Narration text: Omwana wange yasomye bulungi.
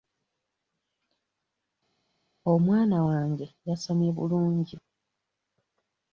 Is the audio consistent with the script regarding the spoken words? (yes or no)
yes